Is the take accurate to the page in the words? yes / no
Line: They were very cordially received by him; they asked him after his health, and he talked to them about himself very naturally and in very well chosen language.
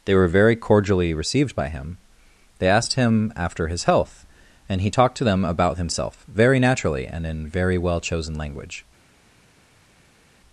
yes